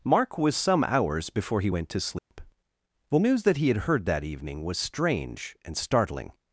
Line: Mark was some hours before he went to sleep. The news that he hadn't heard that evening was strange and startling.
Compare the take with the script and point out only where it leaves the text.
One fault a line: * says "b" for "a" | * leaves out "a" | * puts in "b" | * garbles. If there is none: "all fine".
* says "had" for "hadn't"